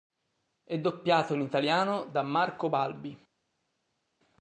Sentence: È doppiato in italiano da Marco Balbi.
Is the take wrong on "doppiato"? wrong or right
right